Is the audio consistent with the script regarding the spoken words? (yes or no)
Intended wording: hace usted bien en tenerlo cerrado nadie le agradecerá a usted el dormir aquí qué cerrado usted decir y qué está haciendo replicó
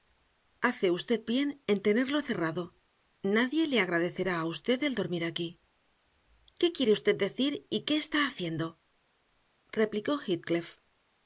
no